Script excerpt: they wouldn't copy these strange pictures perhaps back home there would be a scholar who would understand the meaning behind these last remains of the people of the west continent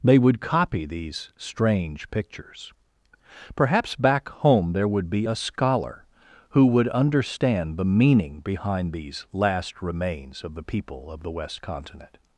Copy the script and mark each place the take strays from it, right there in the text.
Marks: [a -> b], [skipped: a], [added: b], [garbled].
they [wouldn't -> would] copy these strange pictures perhaps back home there would be a scholar who would understand the meaning behind these last remains of the people of the west continent